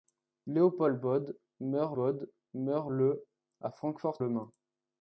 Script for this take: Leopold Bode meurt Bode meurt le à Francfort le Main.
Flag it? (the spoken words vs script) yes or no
no